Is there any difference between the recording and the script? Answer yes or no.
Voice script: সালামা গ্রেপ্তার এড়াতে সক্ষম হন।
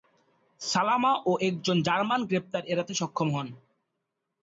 yes